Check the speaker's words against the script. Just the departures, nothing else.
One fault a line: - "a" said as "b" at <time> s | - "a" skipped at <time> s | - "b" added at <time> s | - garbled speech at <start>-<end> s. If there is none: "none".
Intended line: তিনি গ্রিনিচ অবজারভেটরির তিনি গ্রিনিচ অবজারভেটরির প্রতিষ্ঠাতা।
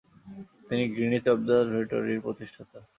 - "তিনি গ্রিনিচ অবজারভেটরির" skipped at 2.2 s